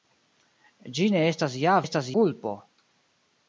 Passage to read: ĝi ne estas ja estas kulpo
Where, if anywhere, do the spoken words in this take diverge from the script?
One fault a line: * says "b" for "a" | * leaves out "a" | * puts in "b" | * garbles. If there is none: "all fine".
all fine